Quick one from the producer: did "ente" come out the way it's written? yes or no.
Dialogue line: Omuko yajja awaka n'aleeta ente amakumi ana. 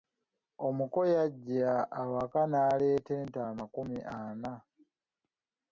yes